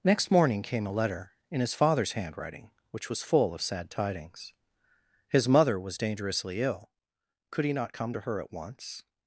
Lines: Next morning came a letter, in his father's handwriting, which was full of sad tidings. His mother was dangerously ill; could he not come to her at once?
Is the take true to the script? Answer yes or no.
yes